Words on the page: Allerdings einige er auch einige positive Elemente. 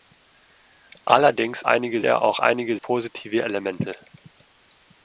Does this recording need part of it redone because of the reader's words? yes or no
no